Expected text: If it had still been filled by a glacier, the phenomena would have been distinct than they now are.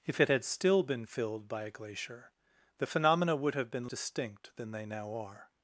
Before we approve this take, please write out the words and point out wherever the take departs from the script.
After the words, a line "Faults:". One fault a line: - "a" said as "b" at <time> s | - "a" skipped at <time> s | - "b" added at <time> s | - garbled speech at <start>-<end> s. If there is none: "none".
If it had still been filled by a glacier, the phenomena would have been distinct than they now are.
Faults:
none